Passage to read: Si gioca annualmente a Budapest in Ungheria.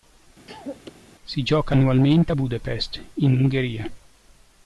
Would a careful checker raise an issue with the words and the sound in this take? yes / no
yes